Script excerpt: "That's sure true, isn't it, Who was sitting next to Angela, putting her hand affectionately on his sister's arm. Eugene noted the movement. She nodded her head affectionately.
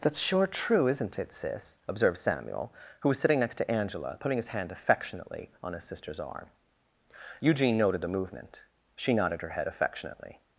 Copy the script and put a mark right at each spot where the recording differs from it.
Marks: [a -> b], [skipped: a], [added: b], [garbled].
"That's sure true, isn't it, [added: Sis observed Samuel] Who was sitting next to Angela, putting [her -> his] hand affectionately on his sister's arm. Eugene noted the movement. She nodded her head affectionately.